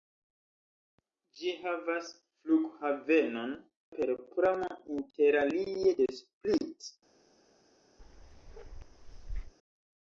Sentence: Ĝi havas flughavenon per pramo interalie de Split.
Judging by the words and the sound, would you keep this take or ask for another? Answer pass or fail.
fail